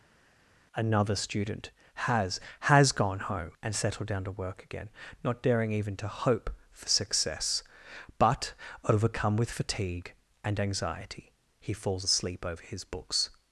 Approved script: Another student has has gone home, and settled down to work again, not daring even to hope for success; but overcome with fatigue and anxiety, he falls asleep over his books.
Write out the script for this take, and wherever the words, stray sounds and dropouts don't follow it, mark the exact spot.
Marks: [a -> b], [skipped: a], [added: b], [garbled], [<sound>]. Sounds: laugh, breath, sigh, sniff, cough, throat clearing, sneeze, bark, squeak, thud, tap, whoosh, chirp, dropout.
Another student has has gone home, and settled down to work again, not daring even to hope for success; but overcome with fatigue and anxiety, he falls asleep over his books.